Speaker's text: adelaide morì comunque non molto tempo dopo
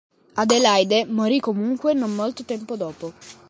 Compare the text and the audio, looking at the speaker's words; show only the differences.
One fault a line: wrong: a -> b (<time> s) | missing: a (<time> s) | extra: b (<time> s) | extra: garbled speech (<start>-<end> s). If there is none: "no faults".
no faults